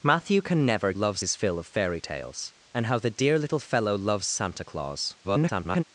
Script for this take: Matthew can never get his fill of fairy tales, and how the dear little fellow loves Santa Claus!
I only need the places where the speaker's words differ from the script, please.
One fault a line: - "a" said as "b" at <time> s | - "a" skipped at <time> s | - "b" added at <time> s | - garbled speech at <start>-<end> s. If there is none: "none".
- "get" said as "loves" at 0.9 s
- garbled speech at 5.2-5.8 s